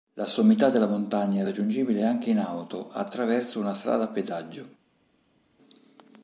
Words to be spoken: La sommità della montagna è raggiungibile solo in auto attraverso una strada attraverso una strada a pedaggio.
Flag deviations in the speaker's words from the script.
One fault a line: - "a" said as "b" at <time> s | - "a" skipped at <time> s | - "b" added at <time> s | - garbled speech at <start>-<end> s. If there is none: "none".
- "solo" said as "anche" at 2.0 s
- "attraverso una strada" skipped at 4.0 s